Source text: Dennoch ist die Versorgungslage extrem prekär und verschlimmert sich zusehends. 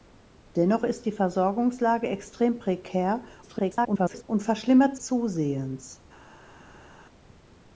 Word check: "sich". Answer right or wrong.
wrong